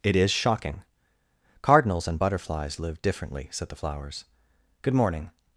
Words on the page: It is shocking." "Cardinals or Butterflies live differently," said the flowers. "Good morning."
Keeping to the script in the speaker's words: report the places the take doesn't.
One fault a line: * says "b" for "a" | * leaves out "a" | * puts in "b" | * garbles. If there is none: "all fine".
* says "and" for "or"